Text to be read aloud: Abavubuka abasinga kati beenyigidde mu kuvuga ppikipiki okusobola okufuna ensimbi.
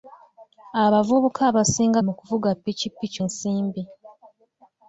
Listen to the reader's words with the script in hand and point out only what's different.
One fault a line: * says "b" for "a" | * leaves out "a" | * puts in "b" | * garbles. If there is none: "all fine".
* leaves out "kati beenyigidde"
* leaves out "okusobola okufuna"